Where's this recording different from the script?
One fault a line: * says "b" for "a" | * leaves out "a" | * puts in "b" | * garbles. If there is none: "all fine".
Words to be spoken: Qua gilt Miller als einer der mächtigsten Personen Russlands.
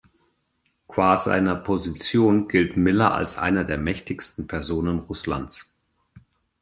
* puts in "seiner Position"